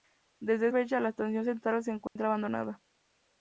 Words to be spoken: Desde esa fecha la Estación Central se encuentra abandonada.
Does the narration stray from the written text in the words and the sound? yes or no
yes